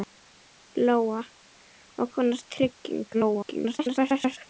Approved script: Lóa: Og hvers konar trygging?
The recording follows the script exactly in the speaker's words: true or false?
false